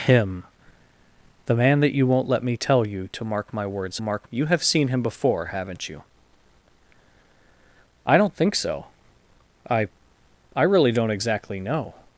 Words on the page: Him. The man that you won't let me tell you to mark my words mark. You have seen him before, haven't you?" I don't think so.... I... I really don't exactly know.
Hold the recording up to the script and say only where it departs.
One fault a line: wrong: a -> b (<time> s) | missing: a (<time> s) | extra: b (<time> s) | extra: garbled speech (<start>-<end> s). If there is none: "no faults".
no faults